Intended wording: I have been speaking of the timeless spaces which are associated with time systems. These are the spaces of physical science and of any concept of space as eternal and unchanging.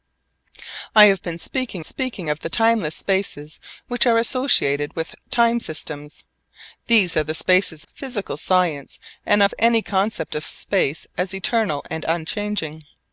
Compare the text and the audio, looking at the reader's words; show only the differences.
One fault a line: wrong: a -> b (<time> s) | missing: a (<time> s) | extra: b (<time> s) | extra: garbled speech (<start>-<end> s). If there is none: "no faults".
extra: speaking (1.8 s)
missing: of (7.9 s)